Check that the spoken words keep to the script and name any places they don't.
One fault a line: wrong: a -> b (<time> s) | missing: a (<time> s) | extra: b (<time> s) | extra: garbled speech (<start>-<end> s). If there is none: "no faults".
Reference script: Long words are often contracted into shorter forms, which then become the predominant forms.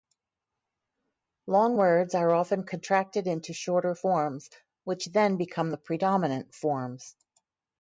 no faults